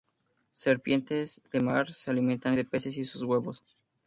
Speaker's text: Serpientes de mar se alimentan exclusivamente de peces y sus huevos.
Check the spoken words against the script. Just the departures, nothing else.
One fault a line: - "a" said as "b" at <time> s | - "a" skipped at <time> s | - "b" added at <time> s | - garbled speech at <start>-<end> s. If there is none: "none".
- "exclusivamente" skipped at 2.5 s